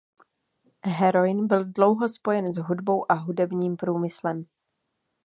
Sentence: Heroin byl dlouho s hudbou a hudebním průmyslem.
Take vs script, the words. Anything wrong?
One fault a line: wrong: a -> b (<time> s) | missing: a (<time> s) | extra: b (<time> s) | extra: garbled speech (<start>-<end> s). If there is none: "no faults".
extra: spojen (2.1 s)